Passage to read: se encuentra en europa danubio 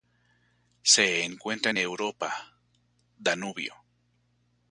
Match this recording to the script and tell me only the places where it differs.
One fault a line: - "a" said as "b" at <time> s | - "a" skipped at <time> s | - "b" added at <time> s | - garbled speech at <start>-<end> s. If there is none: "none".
none